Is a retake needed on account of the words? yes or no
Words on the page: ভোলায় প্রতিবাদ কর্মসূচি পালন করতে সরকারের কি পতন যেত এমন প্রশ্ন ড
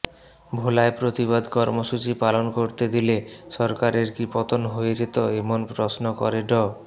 yes